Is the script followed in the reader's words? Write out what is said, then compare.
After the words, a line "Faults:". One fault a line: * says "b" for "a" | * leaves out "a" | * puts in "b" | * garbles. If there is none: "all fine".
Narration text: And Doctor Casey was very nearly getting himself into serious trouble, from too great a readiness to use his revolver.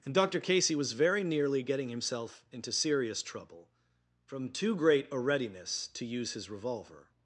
And Doctor Casey was very nearly getting himself into serious trouble, from too great a readiness to use his revolver.
Faults:
all fine